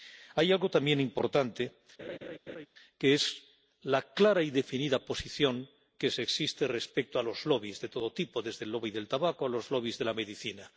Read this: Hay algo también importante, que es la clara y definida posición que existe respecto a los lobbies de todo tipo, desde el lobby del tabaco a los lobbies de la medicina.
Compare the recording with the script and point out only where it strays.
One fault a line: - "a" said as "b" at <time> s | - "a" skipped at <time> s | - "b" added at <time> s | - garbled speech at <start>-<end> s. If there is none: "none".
none